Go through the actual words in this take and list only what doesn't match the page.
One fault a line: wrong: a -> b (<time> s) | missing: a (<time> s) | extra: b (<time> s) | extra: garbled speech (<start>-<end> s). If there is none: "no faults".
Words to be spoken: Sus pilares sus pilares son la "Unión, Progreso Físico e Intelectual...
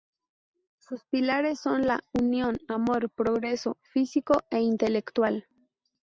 missing: sus pilares (1.6 s)
extra: Amor (2.7 s)